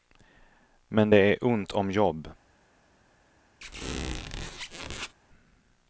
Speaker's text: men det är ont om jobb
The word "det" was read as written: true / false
true